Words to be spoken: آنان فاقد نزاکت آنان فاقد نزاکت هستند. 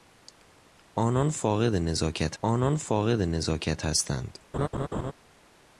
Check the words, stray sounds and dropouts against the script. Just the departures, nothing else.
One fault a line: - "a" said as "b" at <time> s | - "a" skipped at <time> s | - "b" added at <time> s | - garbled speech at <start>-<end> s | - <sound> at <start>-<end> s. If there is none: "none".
- laugh at 4.5-5.1 s